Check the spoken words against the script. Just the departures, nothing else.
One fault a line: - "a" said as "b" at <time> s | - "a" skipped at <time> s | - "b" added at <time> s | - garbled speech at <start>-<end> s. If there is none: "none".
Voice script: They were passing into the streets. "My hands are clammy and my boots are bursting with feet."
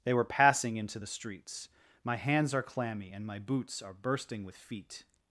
none